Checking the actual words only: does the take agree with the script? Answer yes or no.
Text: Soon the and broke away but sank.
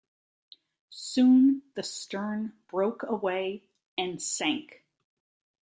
no